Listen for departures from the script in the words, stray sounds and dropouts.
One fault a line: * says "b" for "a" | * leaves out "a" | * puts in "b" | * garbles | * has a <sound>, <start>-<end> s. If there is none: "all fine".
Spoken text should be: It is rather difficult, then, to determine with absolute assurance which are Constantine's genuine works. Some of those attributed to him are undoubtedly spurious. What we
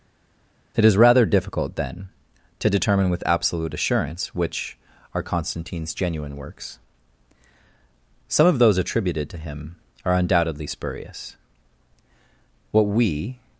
all fine